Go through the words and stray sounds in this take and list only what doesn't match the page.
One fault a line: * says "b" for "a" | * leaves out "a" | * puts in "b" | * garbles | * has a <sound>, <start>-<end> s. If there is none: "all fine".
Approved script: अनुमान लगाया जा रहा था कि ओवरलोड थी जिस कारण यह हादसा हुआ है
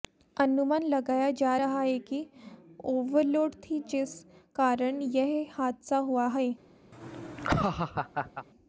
* says "है" for "था"
* has a laugh, 6.9-8.5 s